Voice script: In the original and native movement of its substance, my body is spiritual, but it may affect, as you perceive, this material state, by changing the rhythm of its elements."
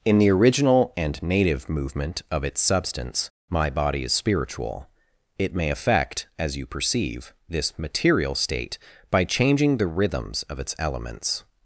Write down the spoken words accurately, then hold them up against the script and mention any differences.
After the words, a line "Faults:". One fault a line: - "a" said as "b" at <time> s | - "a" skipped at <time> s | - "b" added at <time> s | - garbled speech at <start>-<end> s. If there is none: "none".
In the original and native movement of its substance, my body is spiritual, it may affect, as you perceive, this material state, by changing the rhythms of its elements."
Faults:
- "but" skipped at 4.9 s
- "rhythm" said as "rhythms" at 9.9 s